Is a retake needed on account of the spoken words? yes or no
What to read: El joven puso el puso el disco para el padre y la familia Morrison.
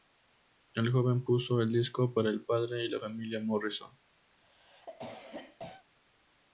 yes